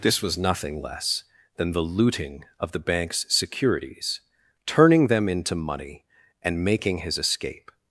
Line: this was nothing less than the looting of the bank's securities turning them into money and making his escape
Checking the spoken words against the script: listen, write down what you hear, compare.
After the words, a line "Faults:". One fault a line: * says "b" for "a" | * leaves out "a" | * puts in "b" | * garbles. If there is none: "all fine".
this was nothing less than the looting of the bank's securities turning them into money and making his escape
Faults:
all fine